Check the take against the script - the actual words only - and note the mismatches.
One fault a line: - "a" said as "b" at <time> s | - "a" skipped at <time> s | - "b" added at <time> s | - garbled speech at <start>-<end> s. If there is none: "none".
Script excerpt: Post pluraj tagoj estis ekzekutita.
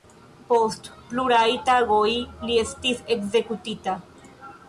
- "li" added at 2.5 s